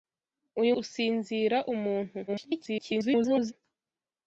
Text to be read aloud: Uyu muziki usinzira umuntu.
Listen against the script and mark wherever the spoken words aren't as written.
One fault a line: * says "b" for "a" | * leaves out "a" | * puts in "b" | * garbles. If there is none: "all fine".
* leaves out "muziki"
* garbles